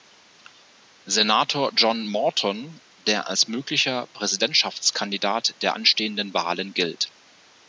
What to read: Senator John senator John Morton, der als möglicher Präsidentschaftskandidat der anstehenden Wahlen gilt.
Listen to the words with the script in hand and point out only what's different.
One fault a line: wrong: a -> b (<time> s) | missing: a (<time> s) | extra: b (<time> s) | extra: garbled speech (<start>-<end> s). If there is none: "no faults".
missing: senator John (2.1 s)